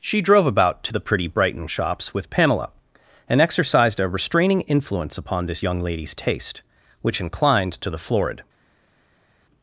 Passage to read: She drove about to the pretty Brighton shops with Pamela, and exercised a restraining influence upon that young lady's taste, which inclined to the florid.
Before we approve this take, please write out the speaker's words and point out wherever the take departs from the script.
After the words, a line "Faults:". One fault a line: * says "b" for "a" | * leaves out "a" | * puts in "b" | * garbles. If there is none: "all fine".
She drove about to the pretty Brighton shops with Pamela, and exercised a restraining influence upon this young lady's taste, which inclined to the florid.
Faults:
* says "this" for "that"